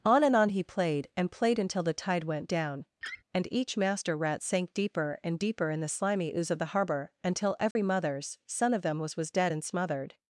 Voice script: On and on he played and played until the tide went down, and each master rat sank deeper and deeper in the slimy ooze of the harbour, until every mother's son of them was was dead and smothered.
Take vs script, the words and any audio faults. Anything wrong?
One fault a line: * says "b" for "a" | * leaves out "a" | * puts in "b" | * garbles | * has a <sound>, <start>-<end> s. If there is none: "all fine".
* has a laugh, 3.0-3.2 s
* has a dropout, 7.7-7.8 s